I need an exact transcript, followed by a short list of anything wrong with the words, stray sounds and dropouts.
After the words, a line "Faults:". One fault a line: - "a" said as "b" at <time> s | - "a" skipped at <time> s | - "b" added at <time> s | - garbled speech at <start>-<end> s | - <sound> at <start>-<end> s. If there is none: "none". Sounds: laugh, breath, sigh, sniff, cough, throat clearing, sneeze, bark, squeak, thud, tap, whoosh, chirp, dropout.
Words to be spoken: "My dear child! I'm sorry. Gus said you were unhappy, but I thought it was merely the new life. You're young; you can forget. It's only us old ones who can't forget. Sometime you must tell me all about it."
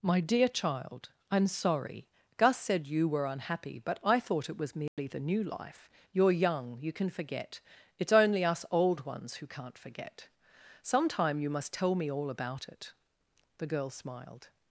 "My dear child! I'm sorry. Gus said you were unhappy, but I thought it was merely the new life. You're young; you can forget. It's only us old ones who can't forget. Sometime you must tell me all about it." The girl smiled
Faults:
- dropout at 4.9-5.0 s
- "The girl smiled" added at 13.6 s